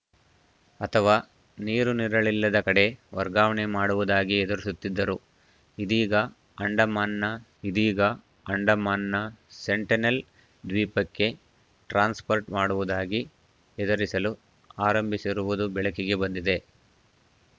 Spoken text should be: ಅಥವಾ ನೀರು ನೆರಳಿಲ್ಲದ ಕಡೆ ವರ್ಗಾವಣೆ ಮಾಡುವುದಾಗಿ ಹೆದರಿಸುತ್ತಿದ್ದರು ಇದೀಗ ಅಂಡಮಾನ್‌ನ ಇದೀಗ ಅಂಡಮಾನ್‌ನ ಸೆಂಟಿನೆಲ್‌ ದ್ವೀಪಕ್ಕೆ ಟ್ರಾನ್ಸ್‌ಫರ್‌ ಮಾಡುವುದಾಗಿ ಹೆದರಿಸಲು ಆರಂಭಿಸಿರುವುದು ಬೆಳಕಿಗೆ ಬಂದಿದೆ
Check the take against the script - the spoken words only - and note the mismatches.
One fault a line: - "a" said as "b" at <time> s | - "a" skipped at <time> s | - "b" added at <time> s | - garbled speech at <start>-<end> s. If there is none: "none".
none